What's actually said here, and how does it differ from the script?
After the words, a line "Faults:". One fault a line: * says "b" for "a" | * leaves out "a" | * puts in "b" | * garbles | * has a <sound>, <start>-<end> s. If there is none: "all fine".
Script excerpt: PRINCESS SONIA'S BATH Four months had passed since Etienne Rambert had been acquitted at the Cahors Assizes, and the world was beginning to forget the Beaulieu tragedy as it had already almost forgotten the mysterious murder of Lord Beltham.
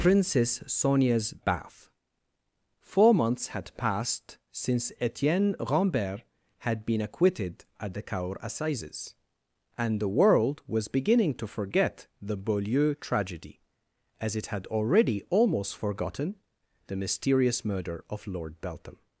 PRINCESS SONIA'S BATH Four months had passed since Etienne Rambert had been acquitted at the Cahors Assizes, and the world was beginning to forget the Beaulieu tragedy as it had already almost forgotten the mysterious murder of Lord Beltham.
Faults:
all fine